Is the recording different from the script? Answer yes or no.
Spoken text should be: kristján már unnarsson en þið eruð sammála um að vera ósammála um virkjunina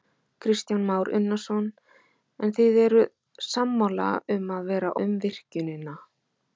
yes